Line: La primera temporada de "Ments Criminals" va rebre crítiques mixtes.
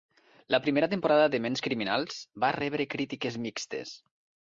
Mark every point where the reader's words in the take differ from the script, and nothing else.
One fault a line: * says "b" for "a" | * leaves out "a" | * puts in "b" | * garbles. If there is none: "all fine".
all fine